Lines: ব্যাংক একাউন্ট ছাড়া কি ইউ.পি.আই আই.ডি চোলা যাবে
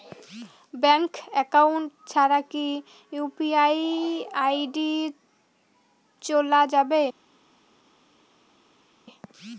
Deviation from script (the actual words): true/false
false